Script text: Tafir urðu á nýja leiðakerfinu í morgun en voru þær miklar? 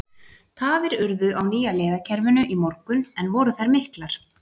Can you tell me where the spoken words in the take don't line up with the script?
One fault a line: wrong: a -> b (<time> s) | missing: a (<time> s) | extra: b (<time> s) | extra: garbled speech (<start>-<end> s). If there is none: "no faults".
no faults